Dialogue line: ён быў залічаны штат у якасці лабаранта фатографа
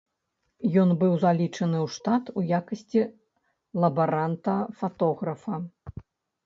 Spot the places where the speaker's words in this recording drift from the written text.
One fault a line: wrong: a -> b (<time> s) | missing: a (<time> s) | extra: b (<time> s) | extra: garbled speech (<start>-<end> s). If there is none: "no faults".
extra: ў (1.8 s)